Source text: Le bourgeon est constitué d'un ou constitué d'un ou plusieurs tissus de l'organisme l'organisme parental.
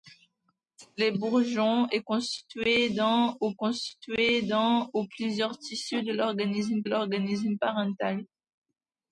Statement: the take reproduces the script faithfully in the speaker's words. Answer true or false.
true